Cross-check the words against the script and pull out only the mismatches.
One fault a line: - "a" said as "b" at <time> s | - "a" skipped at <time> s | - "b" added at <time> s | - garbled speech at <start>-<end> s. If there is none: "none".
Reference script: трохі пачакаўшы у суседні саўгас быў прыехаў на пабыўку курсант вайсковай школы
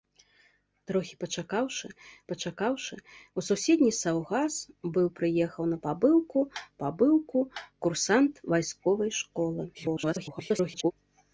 - "пачакаўшы" added at 2.3 s
- "пабыўку" added at 6.8 s
- garbled speech at 9.7-10.9 s